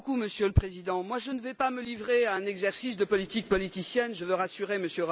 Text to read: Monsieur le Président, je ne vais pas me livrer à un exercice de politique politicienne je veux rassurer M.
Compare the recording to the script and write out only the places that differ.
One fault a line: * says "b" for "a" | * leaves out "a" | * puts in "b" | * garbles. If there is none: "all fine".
all fine